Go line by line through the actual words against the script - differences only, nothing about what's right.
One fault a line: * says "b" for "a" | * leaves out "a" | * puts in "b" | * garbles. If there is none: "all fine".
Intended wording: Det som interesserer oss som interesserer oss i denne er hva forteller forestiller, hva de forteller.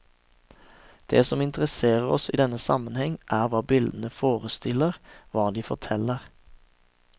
* leaves out "som interesserer oss"
* puts in "sammenheng"
* says "bildene" for "forteller"